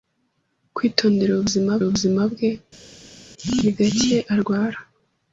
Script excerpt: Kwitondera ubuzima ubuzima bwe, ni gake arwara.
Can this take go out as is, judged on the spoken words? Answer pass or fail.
pass